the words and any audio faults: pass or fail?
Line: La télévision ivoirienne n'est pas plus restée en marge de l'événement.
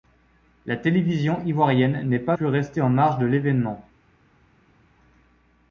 pass